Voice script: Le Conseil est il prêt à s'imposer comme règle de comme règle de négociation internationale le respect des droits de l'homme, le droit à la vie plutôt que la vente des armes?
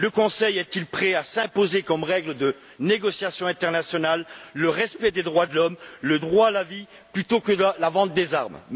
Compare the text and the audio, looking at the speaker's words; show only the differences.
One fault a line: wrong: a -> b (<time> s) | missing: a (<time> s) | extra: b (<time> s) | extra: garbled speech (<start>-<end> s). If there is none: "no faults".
missing: comme règle de (2.5 s)